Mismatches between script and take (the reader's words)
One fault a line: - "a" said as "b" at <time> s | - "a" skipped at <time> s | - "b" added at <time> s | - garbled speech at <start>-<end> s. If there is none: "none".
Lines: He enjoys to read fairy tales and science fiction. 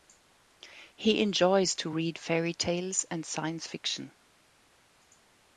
none